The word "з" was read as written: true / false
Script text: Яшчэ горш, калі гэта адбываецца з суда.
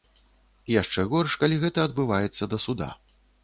false